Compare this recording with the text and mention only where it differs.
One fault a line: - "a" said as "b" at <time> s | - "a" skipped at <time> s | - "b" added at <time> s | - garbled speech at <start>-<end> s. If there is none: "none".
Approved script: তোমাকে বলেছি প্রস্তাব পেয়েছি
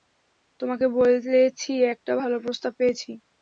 - "একটা ভালো" added at 1.9 s